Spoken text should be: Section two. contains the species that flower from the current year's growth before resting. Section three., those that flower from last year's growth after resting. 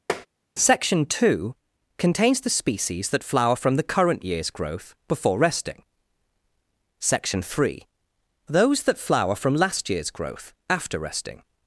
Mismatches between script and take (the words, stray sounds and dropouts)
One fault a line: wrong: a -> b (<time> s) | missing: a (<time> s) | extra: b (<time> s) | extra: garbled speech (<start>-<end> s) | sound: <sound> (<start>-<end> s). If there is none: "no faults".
sound: tap (0.1-0.3 s)